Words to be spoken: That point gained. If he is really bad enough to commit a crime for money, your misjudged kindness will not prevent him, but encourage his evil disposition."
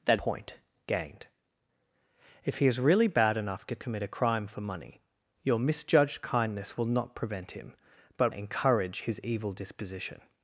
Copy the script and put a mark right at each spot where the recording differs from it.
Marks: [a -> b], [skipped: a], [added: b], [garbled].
That point gained. If he is really bad enough to commit a crime for money, your misjudged kindness will not prevent him, but encourage his evil disposition."